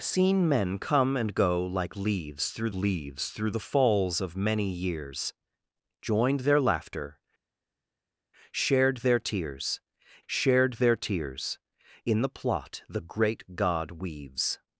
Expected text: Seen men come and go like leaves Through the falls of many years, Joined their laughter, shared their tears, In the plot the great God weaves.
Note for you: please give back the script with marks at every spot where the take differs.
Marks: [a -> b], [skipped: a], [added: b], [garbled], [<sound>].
Seen men come and go like leaves Through [added: leaves Through] the falls of many years, Joined their laughter, shared their tears, [added: shared their tears] In the plot the great God weaves.